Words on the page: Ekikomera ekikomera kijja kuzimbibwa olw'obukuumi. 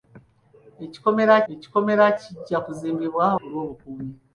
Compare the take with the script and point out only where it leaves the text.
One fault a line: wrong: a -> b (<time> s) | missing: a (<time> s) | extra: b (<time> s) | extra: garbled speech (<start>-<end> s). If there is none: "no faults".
no faults